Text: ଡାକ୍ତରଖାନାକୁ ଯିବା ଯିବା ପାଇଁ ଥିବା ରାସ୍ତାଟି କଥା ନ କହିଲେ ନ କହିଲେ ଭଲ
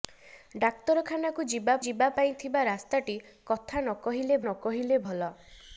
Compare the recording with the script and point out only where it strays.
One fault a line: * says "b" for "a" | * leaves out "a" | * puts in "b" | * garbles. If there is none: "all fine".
all fine